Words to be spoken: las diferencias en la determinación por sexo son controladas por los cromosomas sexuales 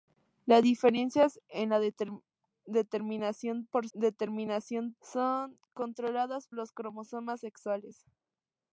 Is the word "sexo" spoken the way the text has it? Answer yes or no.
no